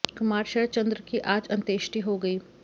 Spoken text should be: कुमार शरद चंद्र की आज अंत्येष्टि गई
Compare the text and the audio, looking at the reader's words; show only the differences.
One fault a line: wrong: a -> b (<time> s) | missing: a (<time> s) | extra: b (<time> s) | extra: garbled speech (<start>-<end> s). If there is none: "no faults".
extra: हो (2.0 s)